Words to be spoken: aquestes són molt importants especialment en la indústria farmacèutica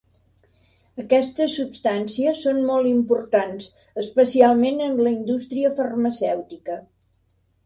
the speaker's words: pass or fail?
fail